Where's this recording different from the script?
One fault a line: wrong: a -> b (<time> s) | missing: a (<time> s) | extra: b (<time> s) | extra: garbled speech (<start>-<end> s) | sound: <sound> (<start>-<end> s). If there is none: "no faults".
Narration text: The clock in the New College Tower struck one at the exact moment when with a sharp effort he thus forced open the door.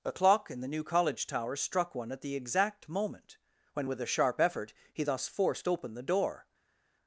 wrong: The -> A (0.0 s)